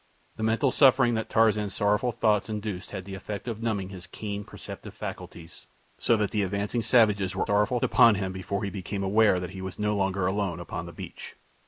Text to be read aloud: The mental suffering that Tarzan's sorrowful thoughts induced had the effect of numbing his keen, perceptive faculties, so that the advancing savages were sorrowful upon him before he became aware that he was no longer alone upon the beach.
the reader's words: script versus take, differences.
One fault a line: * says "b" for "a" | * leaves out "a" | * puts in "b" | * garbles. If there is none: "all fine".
all fine